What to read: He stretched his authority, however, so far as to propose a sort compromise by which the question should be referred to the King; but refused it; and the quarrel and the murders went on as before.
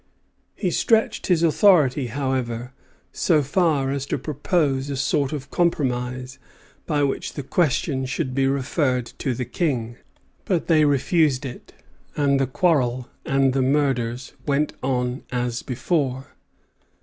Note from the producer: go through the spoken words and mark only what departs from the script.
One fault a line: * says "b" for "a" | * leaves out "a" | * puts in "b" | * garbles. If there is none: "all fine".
* puts in "of"
* puts in "they"